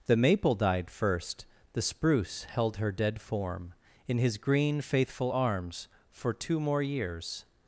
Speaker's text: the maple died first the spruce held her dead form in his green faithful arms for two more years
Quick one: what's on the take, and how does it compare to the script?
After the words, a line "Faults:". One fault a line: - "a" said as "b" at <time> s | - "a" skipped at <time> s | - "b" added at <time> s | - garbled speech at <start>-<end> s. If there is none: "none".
the maple died first the spruce held her dead form in his green faithful arms for two more years
Faults:
none